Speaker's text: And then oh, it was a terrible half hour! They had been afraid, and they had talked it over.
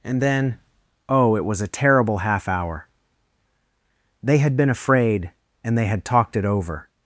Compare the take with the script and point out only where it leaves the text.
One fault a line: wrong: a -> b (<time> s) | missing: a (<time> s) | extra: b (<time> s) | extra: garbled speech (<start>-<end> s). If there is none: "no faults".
no faults